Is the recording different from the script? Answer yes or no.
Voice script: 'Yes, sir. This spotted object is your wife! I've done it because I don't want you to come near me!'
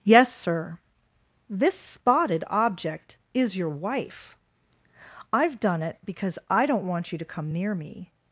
no